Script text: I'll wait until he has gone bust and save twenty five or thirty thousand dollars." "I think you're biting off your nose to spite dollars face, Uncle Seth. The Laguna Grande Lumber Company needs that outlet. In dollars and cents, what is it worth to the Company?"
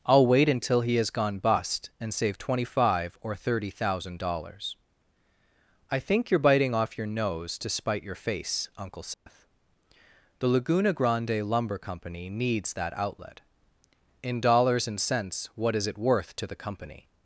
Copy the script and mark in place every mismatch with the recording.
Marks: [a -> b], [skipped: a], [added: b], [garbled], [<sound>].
I'll wait until he has gone bust and save twenty five or thirty thousand dollars." "I think you're biting off your nose to spite [dollars -> your] face, Uncle Seth. [dropout] The Laguna Grande Lumber Company needs that outlet. In dollars and cents, what is it worth to the Company?"